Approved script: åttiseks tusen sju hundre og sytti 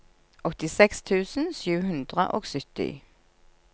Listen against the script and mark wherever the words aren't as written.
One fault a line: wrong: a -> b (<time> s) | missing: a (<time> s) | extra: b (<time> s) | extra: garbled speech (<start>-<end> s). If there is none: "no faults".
no faults